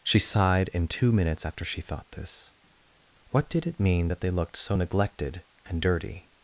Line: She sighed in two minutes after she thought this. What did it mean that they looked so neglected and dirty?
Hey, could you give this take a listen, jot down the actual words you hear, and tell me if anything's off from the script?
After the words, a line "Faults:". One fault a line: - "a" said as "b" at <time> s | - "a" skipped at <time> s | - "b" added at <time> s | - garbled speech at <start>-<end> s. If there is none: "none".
She sighed in two minutes after she thought this. What did it mean that they looked so neglected and dirty?
Faults:
none